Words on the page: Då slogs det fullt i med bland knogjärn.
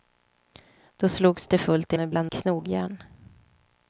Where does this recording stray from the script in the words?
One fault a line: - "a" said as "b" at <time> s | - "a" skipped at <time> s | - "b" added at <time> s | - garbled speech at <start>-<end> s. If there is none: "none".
none